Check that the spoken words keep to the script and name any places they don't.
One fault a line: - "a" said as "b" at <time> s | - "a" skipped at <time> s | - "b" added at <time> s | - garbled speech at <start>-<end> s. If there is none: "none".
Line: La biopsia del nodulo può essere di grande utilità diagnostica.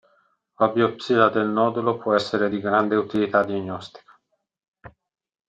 none